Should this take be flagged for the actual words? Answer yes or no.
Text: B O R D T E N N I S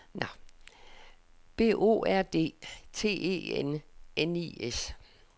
no